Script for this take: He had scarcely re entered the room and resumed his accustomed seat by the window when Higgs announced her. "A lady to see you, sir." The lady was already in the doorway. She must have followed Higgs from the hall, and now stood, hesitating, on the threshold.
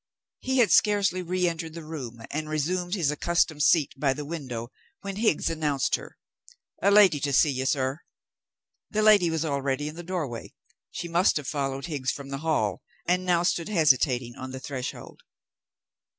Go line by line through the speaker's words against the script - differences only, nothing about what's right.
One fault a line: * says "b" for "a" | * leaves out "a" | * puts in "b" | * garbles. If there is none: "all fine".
all fine